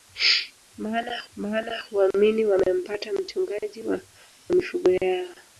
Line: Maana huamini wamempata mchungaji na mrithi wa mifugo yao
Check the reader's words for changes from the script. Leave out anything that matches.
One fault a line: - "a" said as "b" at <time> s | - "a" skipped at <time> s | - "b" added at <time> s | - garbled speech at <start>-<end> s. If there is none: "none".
- "maana" added at 1.4 s
- "na mrithi wa" skipped at 3.8 s